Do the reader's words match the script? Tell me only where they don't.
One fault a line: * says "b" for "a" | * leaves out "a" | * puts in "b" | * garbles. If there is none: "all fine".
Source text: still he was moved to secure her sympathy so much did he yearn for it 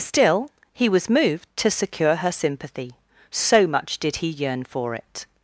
all fine